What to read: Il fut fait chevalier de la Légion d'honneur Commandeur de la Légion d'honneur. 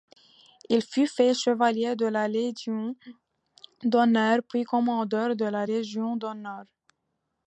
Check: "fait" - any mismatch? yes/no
no